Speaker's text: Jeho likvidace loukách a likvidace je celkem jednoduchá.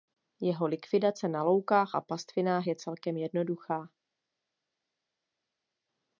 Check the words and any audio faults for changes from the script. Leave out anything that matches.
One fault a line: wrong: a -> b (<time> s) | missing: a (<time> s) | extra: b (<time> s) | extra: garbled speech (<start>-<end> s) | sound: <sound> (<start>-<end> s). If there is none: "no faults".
extra: na (1.3 s)
wrong: likvidace -> pastvinách (2.0 s)